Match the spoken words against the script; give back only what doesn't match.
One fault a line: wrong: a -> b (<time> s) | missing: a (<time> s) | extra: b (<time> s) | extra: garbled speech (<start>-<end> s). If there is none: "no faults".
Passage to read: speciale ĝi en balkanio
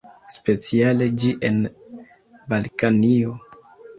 no faults